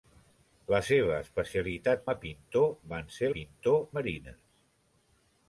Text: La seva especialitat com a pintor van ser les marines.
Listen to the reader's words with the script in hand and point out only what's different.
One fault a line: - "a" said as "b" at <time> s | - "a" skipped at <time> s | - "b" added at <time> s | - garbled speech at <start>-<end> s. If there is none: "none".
- "com" skipped at 2.1 s
- "les" said as "pintor" at 3.3 s